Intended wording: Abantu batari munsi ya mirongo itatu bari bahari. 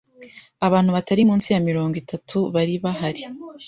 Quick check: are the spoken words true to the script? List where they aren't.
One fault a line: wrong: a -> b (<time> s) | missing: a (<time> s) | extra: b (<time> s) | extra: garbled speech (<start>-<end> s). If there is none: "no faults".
no faults